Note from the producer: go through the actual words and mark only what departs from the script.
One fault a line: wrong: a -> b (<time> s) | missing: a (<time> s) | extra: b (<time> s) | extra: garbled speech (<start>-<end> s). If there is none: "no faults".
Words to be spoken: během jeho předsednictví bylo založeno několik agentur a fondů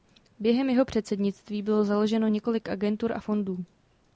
no faults